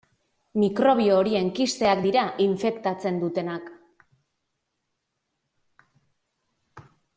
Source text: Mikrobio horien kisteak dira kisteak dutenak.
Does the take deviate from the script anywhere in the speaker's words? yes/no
yes